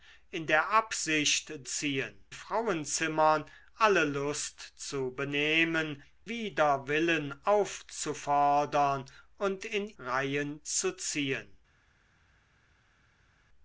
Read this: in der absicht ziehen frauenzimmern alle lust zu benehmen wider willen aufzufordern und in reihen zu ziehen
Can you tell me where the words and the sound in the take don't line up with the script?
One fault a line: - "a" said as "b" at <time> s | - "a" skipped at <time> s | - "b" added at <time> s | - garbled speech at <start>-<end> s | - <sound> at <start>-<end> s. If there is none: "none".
none